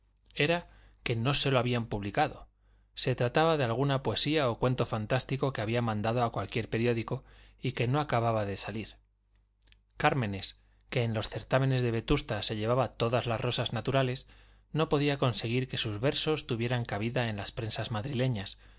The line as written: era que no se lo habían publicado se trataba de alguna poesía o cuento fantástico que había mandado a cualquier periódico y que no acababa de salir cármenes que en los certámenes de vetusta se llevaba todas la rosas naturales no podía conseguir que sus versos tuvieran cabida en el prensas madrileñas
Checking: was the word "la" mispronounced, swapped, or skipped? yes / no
yes